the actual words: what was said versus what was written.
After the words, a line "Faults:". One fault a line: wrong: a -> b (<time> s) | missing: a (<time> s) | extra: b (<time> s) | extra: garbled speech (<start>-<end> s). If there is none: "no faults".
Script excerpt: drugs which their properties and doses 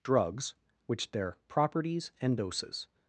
drugs which their properties and doses
Faults:
no faults